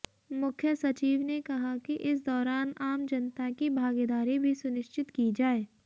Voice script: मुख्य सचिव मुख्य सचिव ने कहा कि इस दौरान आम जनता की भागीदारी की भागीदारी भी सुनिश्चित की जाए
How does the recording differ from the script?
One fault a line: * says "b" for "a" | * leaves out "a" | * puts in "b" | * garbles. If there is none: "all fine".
* leaves out "मुख्य सचिव"
* leaves out "की भागीदारी"